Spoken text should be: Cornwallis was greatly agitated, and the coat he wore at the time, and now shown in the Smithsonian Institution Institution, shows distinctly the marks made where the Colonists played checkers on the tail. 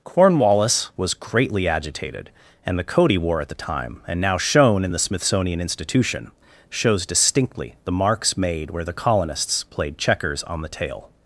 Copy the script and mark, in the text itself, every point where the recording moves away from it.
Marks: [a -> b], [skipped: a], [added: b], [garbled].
Cornwallis was greatly agitated, and the coat he wore at the time, and now shown in the Smithsonian Institution [skipped: Institution,] shows distinctly the marks made where the Colonists played checkers on the tail.